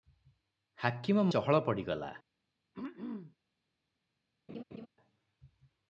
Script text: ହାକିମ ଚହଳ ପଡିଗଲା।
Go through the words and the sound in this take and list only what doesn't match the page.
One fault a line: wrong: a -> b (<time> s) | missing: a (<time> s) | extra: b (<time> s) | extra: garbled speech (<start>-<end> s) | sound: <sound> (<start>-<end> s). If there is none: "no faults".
sound: throat clearing (2.7-3.4 s)
sound: laugh (4.5-4.9 s)